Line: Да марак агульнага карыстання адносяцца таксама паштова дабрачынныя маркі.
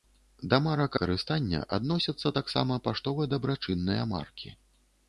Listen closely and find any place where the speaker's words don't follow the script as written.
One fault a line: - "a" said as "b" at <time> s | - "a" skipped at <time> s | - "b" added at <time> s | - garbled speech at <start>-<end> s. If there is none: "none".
- "агульнага" skipped at 0.9 s